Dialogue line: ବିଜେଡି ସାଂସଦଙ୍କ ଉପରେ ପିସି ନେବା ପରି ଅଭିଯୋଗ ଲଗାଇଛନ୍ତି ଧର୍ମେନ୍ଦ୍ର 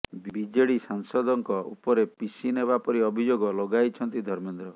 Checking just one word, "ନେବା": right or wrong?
right